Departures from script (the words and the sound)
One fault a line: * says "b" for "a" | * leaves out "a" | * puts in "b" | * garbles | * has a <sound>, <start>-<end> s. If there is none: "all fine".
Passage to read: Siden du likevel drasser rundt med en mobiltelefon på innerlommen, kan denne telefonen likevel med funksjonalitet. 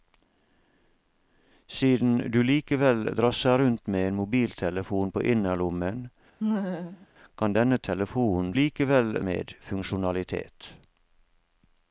* has a laugh, 6.4-7.1 s